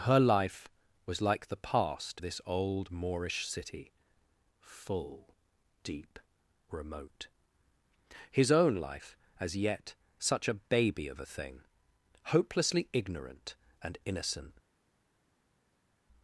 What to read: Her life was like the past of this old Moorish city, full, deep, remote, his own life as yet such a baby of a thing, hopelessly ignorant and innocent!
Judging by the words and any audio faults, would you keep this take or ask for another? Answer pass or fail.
fail